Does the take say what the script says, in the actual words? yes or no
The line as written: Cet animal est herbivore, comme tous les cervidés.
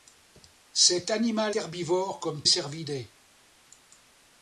no